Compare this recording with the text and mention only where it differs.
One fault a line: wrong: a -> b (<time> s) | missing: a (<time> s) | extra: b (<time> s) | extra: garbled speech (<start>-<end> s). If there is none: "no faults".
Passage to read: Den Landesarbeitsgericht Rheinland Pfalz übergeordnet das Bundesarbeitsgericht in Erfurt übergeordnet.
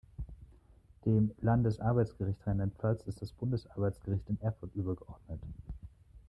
wrong: Den -> Dem (1.1 s)
wrong: übergeordnet -> ist (3.0 s)